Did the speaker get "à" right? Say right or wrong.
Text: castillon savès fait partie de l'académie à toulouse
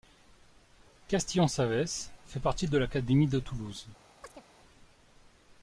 wrong